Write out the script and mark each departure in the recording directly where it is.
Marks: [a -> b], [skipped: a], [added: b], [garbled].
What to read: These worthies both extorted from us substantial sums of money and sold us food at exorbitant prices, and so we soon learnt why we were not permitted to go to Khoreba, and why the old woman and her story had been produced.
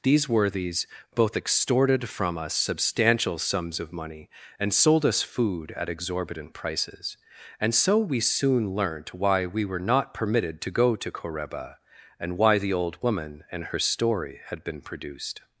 These worthies both extorted from us substantial sums of money and sold us food at exorbitant prices, and so we soon learnt why we were not permitted to go to Khoreba, and why the old woman and her story had been produced.